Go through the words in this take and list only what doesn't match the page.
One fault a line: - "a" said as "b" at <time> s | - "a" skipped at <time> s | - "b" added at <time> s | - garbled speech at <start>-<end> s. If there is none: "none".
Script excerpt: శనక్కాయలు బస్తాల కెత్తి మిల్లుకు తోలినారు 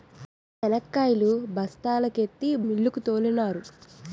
none